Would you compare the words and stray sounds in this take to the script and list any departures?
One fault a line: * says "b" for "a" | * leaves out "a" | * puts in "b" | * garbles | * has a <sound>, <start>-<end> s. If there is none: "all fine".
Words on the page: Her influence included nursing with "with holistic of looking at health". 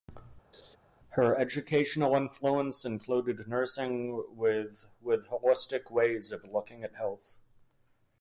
* has a laugh, 0.5-0.8 s
* puts in "educational"
* puts in "ways"